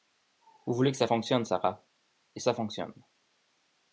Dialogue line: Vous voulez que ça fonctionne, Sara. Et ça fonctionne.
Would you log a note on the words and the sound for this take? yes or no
no